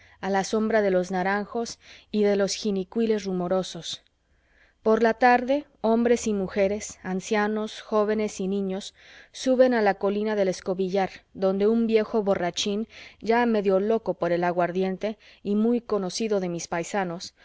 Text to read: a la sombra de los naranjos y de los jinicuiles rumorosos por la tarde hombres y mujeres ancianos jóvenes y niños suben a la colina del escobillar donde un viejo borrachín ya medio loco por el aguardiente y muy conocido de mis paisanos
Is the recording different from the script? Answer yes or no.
no